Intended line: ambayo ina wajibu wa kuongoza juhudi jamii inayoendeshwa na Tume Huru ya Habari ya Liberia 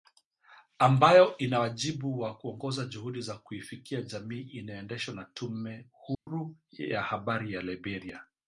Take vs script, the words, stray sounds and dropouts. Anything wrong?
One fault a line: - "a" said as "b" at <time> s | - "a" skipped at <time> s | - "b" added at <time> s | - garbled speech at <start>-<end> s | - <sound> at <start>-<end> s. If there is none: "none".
- "za kuifikia" added at 3.2 s
- dropout at 6.1-6.3 s